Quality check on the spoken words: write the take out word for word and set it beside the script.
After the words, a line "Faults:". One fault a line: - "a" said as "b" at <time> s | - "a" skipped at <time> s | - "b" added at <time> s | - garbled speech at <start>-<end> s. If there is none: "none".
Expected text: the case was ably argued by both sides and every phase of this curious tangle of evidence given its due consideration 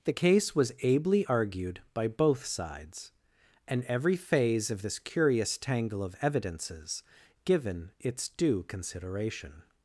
the case was ably argued by both sides and every phase of this curious tangle of evidences given its due consideration
Faults:
- "evidence" said as "evidences" at 6.2 s